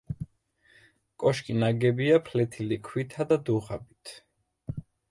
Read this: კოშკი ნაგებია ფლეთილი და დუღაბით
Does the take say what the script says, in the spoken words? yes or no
no